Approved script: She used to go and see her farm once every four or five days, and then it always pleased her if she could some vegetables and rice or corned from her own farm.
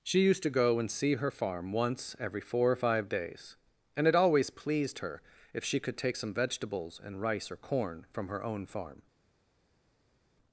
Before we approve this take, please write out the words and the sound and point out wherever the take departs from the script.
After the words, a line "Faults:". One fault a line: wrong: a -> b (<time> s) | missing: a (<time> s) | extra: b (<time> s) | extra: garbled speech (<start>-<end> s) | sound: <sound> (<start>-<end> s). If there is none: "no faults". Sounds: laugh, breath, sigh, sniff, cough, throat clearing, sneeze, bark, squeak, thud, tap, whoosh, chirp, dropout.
She used to go and see her farm once every four or five days, and it always pleased her if she could take some vegetables and rice or corn from her own farm.
Faults:
missing: then (4.1 s)
extra: take (6.0 s)
wrong: corned -> corn (7.6 s)